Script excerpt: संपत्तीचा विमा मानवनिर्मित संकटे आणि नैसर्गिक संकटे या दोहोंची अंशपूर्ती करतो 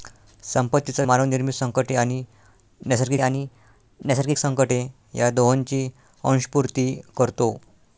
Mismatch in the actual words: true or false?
true